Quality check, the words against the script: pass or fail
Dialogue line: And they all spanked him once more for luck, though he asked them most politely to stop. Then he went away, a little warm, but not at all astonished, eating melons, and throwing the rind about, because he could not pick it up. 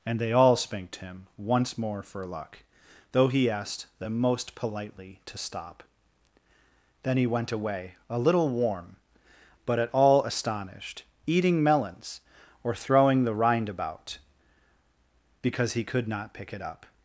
fail